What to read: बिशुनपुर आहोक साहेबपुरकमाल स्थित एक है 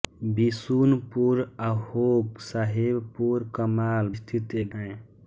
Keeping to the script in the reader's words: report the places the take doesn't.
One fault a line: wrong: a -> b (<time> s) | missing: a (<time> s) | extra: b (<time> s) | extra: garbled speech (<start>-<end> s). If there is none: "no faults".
no faults